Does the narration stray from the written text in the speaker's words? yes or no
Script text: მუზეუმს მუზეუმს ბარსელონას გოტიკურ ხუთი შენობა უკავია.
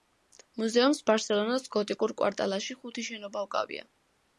yes